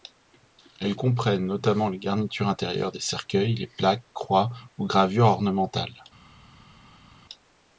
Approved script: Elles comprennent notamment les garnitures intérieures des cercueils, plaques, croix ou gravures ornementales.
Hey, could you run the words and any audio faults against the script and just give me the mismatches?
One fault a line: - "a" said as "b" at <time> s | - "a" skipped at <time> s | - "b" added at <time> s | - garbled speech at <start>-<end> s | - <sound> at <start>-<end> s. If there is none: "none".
- "les" added at 3.5 s